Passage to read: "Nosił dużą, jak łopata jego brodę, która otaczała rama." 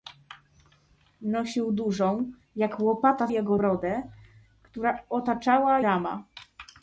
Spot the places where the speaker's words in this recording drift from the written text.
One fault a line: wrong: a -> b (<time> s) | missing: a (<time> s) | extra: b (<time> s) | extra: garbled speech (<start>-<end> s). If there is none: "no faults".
no faults